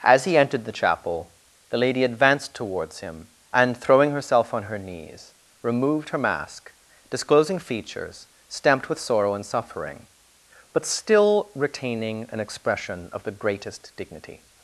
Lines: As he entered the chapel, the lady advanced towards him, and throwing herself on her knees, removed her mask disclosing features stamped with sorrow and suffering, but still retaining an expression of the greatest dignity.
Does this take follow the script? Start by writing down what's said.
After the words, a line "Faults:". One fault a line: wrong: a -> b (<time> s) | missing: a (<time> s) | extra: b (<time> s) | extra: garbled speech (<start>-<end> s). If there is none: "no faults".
As he entered the chapel, the lady advanced towards him, and throwing herself on her knees, removed her mask disclosing features stamped with sorrow and suffering, but still retaining an expression of the greatest dignity.
Faults:
no faults